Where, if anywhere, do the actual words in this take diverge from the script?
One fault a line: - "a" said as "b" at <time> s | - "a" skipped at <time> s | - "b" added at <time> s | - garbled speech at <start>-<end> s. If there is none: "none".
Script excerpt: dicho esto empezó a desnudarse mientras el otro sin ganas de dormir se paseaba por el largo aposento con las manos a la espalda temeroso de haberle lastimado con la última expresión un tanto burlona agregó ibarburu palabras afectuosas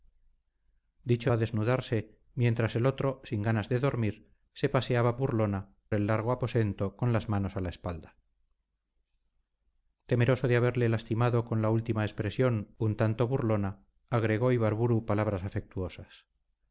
- "esto empezó" skipped at 1.3 s
- "por" said as "burlona" at 5.2 s